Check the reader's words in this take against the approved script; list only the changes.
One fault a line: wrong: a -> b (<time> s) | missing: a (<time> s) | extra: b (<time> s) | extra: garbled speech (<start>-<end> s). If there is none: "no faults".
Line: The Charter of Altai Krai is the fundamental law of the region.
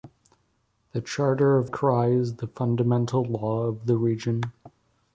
missing: Altai (1.7 s)